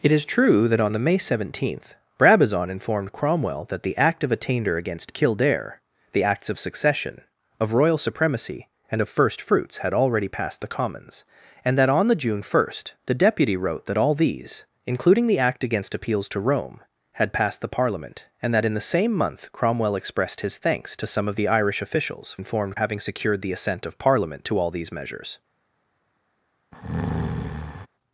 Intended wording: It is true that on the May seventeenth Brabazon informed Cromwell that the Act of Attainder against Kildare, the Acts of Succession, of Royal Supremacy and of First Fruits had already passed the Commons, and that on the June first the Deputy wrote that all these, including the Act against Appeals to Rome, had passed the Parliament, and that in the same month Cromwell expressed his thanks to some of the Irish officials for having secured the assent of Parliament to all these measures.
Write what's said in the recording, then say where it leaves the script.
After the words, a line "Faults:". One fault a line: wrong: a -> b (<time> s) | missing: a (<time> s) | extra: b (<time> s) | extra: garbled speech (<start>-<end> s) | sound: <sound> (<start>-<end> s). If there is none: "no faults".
It is true that on the May seventeenth Brabazon informed Cromwell that the Act of Attainder against Kildare, the Acts of Succession, of Royal Supremacy and of First Fruits had already passed the Commons, and that on the June first the Deputy wrote that all these, including the Act against Appeals to Rome, had passed the Parliament, and that in the same month Cromwell expressed his thanks to some of the Irish officials informed having secured the assent of Parliament to all these measures.
Faults:
wrong: for -> informed (22.4 s)
sound: breath (26.7-27.9 s)